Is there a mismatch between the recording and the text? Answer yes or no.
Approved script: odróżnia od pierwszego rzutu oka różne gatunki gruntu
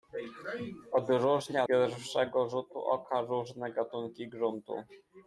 yes